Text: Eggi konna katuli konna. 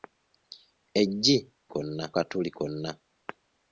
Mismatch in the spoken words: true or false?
false